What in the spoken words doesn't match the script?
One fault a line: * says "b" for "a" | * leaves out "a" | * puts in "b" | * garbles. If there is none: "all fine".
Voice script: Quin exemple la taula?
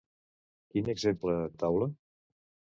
all fine